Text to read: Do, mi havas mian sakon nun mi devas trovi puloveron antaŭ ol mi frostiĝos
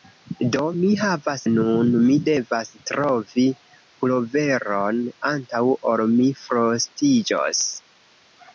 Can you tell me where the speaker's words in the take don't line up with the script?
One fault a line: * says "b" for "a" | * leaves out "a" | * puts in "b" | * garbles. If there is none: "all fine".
* leaves out "mian sakon"